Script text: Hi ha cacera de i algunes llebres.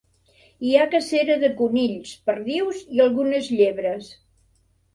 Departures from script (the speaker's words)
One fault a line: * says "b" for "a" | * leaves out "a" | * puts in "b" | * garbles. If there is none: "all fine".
* puts in "conills perdius"